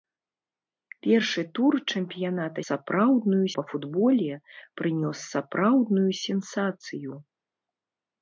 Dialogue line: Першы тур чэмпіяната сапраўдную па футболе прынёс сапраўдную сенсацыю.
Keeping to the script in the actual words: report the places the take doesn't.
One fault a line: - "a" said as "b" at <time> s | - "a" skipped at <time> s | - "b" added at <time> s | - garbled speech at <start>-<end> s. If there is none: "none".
none